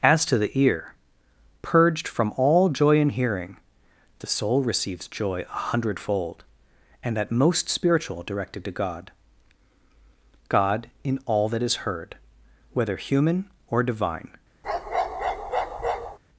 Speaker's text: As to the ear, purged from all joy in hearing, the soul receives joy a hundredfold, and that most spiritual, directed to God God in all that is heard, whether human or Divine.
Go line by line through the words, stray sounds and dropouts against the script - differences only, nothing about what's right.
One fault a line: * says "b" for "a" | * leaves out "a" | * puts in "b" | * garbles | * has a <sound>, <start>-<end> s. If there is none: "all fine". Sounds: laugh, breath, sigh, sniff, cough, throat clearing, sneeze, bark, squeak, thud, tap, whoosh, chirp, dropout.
* has a bark, 14.6-16.2 s